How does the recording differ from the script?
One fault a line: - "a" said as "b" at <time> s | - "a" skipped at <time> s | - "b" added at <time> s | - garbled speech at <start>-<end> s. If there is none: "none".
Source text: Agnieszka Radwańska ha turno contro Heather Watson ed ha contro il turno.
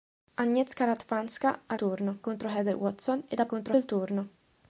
none